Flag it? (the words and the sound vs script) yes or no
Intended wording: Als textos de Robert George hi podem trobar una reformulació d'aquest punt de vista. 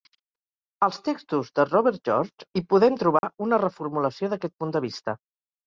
yes